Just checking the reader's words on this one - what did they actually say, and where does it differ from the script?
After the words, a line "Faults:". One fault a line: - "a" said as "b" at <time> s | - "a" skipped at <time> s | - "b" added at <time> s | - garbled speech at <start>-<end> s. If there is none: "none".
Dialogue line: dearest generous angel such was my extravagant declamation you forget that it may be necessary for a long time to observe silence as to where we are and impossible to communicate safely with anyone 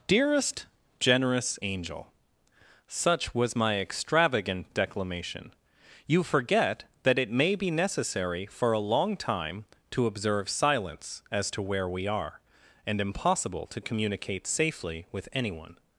dearest generous angel such was my extravagant declamation you forget that it may be necessary for a long time to observe silence as to where we are and impossible to communicate safely with anyone
Faults:
none